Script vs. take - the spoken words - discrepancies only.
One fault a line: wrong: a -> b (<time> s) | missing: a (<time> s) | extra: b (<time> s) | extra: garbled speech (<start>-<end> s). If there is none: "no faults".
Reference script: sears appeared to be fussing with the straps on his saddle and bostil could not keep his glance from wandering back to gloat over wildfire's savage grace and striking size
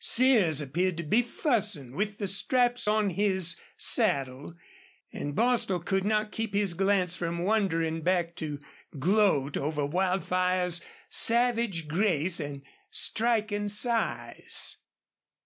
no faults